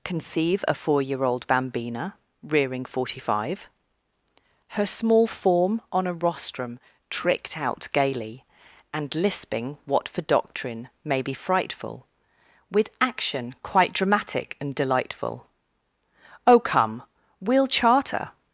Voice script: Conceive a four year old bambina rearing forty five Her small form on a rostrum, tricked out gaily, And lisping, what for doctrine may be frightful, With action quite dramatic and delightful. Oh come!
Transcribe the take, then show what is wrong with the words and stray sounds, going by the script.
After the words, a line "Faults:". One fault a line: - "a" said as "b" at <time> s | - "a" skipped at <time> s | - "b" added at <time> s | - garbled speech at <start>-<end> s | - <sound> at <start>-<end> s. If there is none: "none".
Conceive a four year old bambina rearing forty five Her small form on a rostrum, tricked out gaily, And lisping, what for doctrine may be frightful, With action quite dramatic and delightful. Oh come! We'll charter
Faults:
- "We'll charter" added at 17.4 s